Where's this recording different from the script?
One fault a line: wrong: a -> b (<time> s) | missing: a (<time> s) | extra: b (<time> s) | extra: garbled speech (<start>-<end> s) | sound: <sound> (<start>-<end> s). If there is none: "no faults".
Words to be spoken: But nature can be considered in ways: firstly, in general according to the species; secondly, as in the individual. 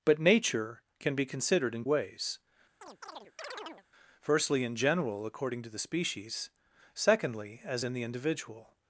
sound: chirp (2.8-3.9 s)